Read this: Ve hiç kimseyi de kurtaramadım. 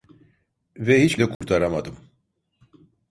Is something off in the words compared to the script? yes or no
yes